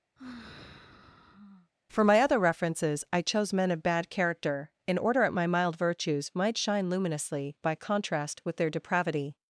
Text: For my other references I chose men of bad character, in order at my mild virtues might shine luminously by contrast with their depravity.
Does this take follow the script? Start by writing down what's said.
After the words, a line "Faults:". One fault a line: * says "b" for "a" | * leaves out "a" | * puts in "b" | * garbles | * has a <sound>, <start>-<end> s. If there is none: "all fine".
For my other references I chose men of bad character, in order at my mild virtues might shine luminously by contrast with their depravity.
Faults:
* has a sigh, 0.2-1.7 s